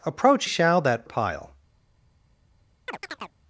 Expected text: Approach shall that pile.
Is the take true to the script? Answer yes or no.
yes